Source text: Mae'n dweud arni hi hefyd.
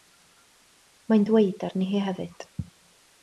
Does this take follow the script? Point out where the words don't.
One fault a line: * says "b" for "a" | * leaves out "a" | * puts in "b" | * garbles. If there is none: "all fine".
all fine